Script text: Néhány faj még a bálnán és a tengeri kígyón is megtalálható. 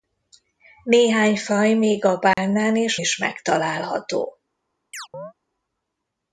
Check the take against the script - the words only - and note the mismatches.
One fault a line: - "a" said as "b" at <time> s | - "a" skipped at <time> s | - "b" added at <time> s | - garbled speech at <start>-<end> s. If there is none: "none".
- "a tengeri kígyón" skipped at 3.0 s